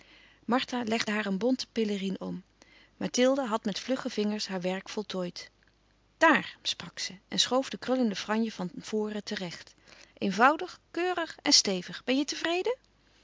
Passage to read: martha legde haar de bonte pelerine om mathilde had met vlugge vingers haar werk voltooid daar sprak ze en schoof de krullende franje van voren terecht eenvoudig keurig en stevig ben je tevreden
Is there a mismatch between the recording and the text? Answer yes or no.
yes